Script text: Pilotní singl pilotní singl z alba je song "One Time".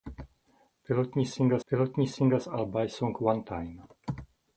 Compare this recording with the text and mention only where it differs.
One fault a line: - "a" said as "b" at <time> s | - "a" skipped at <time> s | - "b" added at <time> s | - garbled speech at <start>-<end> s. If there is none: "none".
none